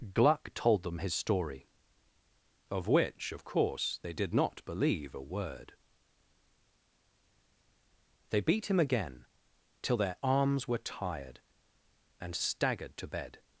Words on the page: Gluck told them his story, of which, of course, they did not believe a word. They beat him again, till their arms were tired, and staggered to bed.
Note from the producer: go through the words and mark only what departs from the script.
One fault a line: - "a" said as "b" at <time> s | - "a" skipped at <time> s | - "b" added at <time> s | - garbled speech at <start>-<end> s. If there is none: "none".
none